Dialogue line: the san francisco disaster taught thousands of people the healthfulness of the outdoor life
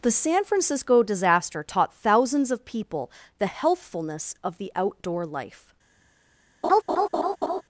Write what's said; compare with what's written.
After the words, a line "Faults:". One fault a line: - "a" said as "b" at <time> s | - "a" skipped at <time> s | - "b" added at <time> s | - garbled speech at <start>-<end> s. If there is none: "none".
the san francisco disaster taught thousands of people the healthfulness of the outdoor life
Faults:
none